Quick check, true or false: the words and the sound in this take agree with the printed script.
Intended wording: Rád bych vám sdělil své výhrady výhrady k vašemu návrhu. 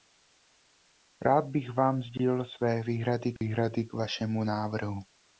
false